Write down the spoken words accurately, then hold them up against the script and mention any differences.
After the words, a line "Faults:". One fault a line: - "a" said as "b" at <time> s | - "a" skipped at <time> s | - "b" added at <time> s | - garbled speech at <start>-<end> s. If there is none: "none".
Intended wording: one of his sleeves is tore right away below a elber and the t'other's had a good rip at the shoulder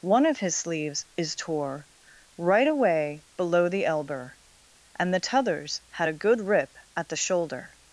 one of his sleeves is tore right away below the elber and the t'other's had a good rip at the shoulder
Faults:
- "a" said as "the" at 3.7 s